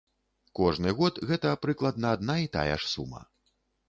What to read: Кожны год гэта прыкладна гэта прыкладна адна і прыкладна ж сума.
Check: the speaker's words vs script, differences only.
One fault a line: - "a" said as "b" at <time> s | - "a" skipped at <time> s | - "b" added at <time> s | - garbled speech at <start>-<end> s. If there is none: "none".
- "гэта прыкладна" skipped at 2.1 s
- "прыкладна" said as "тая" at 2.6 s